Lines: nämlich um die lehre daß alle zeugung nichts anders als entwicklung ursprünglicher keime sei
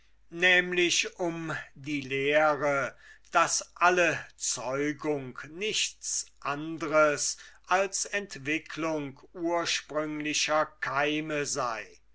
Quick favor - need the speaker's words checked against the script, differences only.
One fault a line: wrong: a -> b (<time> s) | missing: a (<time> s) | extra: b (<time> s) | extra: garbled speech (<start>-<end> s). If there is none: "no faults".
no faults